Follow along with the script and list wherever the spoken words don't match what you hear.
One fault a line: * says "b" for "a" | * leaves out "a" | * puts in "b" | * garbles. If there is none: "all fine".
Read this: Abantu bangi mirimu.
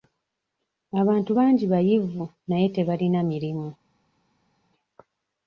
* puts in "bayivu naye tebalina"